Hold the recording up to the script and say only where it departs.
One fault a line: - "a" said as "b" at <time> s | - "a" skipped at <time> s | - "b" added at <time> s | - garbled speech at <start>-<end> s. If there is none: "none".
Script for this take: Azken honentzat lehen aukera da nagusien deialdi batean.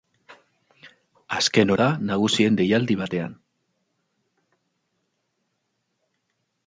- "honentzat lehen aukera" skipped at 1.7 s